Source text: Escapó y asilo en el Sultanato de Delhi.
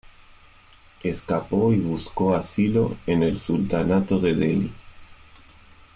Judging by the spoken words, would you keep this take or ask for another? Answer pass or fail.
fail